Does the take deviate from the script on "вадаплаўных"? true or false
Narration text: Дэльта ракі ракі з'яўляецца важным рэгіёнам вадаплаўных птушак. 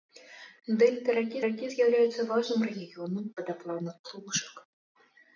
false